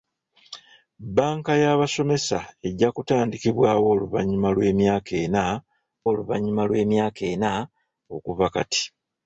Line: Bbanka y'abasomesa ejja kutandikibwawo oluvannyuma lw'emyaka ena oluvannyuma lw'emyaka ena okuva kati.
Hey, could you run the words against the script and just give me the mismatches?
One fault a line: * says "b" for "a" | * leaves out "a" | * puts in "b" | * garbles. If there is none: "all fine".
all fine